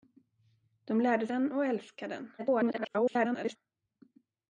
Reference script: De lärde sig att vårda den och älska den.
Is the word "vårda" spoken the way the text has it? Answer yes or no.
no